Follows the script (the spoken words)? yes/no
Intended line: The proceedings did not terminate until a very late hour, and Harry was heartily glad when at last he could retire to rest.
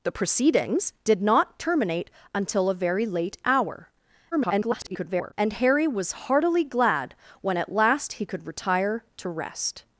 no